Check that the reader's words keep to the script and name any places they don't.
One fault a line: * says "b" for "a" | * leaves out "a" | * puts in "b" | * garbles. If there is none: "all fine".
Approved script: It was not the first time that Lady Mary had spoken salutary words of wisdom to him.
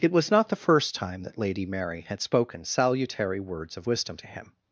all fine